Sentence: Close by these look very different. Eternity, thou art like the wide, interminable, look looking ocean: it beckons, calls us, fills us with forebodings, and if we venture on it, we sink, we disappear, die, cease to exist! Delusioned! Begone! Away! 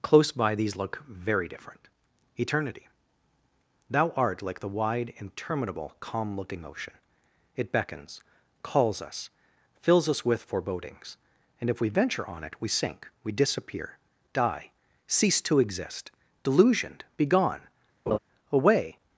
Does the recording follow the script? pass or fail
fail